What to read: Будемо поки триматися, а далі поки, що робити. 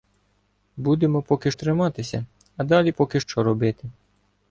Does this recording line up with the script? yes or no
yes